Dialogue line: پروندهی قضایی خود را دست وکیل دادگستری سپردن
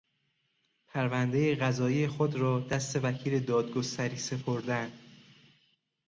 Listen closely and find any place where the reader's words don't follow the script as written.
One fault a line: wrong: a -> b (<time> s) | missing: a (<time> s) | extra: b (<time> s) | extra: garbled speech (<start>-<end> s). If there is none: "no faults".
no faults